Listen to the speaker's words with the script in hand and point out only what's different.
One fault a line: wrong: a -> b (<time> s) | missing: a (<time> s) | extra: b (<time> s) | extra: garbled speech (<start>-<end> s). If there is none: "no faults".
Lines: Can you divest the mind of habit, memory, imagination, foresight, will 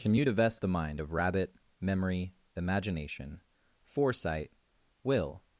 wrong: habit -> rabbit (1.1 s)